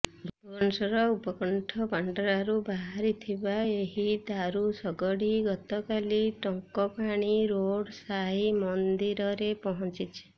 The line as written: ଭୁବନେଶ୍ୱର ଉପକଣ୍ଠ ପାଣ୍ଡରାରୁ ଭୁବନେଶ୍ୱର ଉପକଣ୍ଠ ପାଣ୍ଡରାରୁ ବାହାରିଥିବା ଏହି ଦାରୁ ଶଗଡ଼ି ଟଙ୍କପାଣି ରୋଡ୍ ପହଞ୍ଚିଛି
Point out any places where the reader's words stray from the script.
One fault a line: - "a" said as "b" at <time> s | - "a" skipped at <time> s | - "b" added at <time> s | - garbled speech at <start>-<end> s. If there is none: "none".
- "ଭୁବନେଶ୍ୱର ଉପକଣ୍ଠ ପାଣ୍ଡରାରୁ" skipped at 2.5 s
- "ଗତକାଲି" added at 5.5 s
- "ସାଇ ମନ୍ଦିରରେ" added at 8.0 s